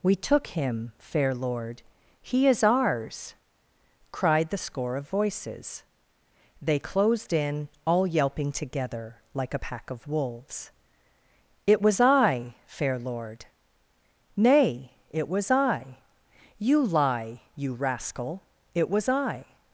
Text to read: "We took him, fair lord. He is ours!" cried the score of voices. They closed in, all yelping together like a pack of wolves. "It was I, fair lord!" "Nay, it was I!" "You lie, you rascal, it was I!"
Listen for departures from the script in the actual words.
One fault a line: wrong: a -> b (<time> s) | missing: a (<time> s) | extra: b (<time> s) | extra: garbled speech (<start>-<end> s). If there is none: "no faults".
no faults